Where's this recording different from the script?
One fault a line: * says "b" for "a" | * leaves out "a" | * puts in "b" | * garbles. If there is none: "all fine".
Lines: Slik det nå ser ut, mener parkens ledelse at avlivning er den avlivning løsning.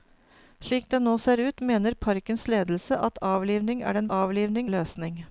all fine